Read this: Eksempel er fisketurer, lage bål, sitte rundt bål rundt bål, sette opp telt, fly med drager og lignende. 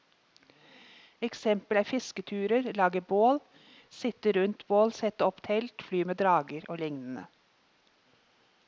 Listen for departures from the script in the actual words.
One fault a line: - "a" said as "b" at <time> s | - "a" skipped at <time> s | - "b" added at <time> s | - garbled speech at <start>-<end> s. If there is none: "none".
- "rundt bål" skipped at 4.9 s